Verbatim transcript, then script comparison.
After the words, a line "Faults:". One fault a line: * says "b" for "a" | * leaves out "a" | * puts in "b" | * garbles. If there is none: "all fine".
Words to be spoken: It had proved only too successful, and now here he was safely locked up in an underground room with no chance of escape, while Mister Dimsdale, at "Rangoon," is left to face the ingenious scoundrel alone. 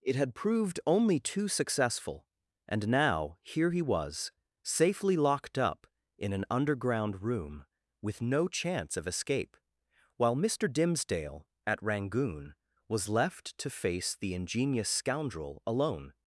It had proved only too successful, and now here he was safely locked up in an underground room with no chance of escape, while Mister Dimsdale, at "Rangoon," was left to face the ingenious scoundrel alone.
Faults:
* says "was" for "is"